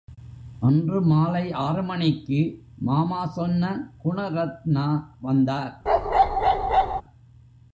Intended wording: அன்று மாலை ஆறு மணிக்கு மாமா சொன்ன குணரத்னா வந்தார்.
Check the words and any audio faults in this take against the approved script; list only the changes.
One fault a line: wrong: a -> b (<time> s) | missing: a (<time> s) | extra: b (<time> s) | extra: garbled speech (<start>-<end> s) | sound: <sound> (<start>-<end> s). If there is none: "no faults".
sound: bark (5.9-7.0 s)